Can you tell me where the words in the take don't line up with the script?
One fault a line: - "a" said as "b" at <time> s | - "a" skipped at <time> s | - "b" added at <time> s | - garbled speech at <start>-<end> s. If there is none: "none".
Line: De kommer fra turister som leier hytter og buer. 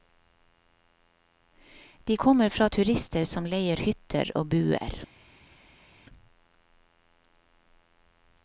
none